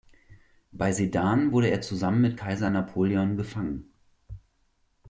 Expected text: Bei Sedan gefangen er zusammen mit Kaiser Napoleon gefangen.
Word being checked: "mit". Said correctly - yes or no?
yes